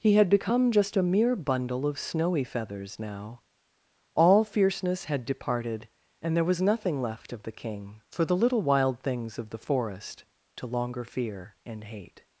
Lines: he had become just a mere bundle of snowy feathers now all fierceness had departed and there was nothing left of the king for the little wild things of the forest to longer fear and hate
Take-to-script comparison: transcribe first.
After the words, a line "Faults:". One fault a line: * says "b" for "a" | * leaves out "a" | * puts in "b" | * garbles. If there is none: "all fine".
he had become just a mere bundle of snowy feathers now all fierceness had departed and there was nothing left of the king for the little wild things of the forest to longer fear and hate
Faults:
all fine